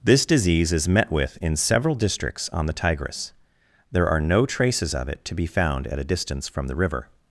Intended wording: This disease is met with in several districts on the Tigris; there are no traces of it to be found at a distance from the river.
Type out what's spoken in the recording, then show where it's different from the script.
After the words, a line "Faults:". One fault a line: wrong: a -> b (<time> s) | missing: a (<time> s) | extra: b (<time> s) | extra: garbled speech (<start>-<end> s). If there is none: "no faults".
This disease is met with in several districts on the Tigris; there are no traces of it to be found at a distance from the river.
Faults:
no faults